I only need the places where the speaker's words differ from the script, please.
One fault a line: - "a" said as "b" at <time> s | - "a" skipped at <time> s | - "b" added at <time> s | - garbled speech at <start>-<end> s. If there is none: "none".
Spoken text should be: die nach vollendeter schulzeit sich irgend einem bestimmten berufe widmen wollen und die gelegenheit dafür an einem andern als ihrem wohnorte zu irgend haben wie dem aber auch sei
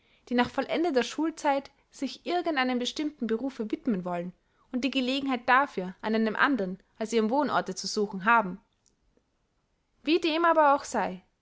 - "irgend" said as "suchen" at 7.9 s